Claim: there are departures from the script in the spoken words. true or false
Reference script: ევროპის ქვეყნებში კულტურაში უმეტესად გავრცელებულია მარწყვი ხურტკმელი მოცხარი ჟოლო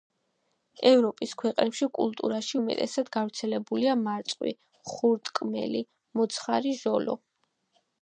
false